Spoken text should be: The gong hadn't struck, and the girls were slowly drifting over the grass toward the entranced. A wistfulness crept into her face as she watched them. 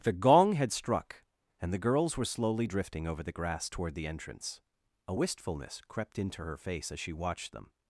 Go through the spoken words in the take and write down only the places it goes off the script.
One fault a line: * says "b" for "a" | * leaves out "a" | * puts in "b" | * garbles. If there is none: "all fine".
* says "had" for "hadn't"
* says "entrance" for "entranced"